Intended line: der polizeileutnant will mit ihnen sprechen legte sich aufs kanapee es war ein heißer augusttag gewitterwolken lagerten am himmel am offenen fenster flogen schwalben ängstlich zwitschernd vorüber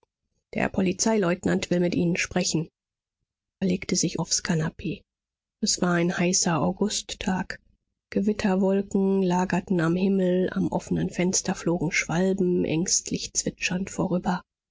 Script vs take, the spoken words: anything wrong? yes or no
no